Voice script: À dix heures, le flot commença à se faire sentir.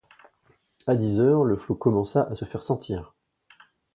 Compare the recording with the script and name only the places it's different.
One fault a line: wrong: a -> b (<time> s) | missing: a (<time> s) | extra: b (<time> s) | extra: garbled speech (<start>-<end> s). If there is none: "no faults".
no faults